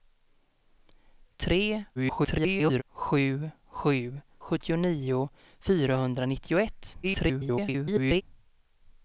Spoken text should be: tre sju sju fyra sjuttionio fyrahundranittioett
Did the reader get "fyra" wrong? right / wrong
wrong